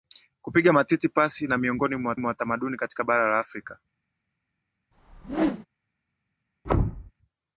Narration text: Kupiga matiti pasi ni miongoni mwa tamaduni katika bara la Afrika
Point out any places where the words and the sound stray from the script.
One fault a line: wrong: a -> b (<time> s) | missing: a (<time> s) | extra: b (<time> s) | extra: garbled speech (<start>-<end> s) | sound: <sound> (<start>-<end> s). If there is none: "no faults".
extra: mwa (2.1 s)
sound: whoosh (4.9-5.7 s)
sound: thud (6.6-7.1 s)